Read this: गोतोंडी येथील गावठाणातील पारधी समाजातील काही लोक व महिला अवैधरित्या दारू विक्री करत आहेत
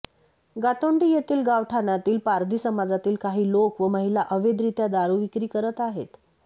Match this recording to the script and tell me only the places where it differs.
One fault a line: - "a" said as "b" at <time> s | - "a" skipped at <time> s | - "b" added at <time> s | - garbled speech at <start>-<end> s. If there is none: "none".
none